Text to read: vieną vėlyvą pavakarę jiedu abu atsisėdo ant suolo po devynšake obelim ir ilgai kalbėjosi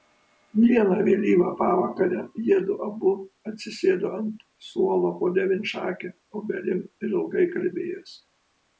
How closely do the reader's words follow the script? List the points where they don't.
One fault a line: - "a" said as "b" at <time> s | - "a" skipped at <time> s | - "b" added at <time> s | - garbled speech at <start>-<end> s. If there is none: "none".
none